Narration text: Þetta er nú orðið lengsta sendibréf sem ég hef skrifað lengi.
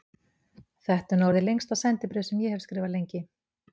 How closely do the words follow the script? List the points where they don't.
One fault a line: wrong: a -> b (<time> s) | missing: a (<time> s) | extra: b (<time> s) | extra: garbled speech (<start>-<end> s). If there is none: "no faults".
no faults